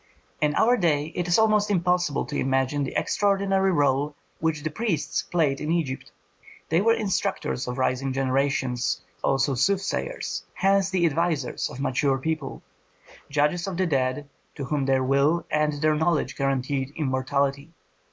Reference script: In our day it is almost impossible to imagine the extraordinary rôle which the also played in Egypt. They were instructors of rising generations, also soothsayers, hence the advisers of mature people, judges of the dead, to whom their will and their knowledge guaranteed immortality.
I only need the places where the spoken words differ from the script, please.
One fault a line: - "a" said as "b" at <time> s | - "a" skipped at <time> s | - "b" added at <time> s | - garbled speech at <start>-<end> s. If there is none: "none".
- "also" said as "priests" at 4.7 s